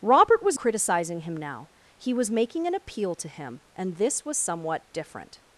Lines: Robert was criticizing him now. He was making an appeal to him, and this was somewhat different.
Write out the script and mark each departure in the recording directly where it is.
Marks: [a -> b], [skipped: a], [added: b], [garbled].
Robert was criticizing him now. He was making an appeal to him, and this was somewhat different.